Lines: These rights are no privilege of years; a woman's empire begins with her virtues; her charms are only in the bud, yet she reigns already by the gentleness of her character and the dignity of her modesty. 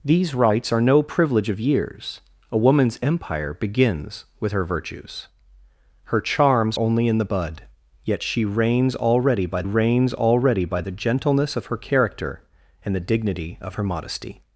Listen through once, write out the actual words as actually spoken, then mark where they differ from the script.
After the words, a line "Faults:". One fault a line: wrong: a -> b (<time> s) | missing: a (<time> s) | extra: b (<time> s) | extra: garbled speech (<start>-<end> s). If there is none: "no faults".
These rights are no privilege of years; a woman's empire begins with her virtues; her charms only in the bud, yet she reigns already by reigns already by the gentleness of her character and the dignity of her modesty.
Faults:
missing: are (6.8 s)
extra: reigns already by (9.6 s)